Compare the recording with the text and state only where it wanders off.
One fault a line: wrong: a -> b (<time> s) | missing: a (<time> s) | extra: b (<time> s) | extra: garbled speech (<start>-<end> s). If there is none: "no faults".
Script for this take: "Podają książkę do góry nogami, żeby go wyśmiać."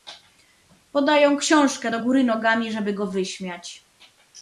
no faults